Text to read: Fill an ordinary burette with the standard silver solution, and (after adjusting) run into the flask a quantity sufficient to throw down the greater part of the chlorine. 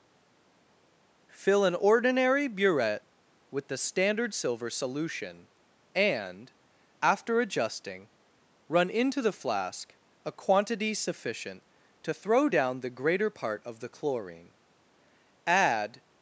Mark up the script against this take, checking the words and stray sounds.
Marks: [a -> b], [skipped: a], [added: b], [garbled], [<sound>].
Fill an ordinary burette with the standard silver solution, and (after adjusting) run into the flask a quantity sufficient to throw down the greater part of the chlorine. [added: Add]